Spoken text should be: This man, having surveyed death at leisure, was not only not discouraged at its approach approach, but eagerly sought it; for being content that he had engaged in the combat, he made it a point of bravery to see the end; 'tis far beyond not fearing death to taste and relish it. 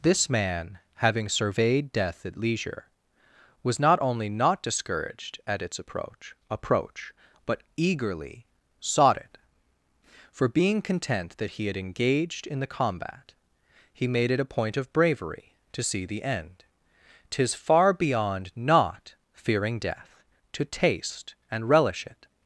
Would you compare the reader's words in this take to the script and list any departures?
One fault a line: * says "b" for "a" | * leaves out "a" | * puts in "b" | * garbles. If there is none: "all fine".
all fine